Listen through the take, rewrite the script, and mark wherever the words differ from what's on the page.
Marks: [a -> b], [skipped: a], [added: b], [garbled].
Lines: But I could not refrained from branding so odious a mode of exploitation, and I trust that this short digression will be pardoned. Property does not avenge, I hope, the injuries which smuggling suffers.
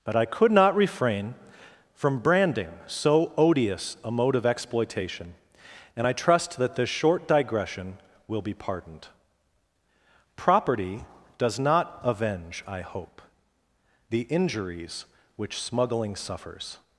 But I could not [refrained -> refrain] from branding so odious a mode of exploitation, and I trust that this short digression will be pardoned. Property does not avenge, I hope, the injuries which smuggling suffers.